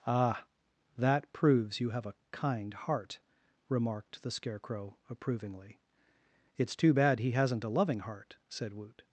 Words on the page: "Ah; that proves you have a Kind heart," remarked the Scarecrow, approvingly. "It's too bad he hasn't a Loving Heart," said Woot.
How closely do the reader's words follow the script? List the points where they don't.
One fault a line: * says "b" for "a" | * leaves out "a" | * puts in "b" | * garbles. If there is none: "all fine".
all fine